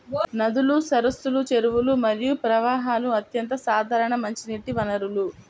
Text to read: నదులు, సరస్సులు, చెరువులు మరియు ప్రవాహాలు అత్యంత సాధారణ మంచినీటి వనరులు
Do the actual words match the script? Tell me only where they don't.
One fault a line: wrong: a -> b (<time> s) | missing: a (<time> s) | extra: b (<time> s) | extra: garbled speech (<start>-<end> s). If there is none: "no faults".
no faults